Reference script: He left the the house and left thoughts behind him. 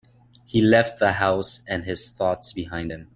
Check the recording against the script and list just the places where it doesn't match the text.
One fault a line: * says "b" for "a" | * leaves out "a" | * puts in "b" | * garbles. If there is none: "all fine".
* leaves out "the"
* says "his" for "left"